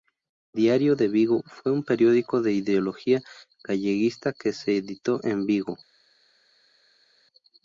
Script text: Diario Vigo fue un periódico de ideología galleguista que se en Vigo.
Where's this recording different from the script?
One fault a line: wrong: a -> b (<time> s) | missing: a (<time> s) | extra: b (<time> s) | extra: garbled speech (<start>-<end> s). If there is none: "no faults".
extra: de (0.9 s)
extra: editó (4.8 s)